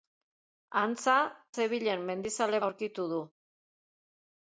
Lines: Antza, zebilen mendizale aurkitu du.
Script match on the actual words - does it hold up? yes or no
yes